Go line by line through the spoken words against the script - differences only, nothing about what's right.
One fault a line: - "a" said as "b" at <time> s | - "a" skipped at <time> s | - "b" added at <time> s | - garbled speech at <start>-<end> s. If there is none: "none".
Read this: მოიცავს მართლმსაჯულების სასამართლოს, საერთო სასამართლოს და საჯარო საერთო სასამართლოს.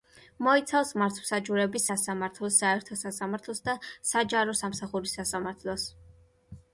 - "საერთო" said as "სამსახურის" at 4.6 s